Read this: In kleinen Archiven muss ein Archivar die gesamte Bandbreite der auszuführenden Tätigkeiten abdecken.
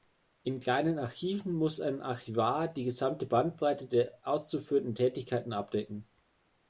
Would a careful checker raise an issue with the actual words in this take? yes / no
no